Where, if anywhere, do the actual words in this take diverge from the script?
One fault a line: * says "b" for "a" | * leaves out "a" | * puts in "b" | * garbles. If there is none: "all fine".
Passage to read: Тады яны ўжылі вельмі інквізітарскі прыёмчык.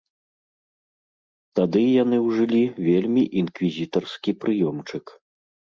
all fine